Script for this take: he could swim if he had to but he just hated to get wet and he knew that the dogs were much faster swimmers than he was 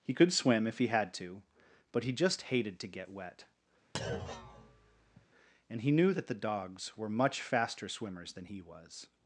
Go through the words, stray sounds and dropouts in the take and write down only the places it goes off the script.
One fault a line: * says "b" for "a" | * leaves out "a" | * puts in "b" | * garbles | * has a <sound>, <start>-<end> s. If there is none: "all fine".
* has a thud, 3.9-5.3 s